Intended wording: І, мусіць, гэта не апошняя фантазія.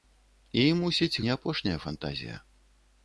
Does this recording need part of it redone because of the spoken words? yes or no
yes